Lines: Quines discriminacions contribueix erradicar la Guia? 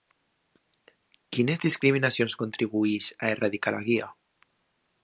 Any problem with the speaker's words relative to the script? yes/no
yes